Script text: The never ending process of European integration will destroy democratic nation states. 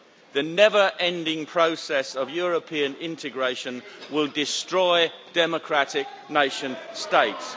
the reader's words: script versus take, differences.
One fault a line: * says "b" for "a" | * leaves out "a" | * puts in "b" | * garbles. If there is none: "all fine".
all fine